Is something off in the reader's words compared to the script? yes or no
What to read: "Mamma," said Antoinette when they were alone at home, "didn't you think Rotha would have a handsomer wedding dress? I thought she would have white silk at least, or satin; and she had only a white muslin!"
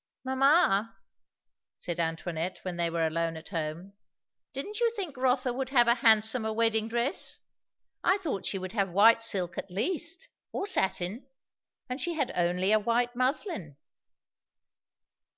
no